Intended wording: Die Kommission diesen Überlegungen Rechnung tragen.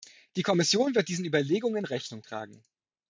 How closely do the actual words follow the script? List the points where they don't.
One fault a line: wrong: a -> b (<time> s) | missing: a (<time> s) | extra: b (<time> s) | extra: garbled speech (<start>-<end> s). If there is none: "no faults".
extra: wird (0.9 s)